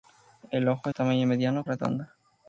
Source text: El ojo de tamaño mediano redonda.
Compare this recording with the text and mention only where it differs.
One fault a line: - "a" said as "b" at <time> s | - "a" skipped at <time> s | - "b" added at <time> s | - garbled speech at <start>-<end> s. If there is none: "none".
none